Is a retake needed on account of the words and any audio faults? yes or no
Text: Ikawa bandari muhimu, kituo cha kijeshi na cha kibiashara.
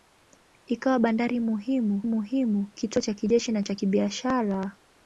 yes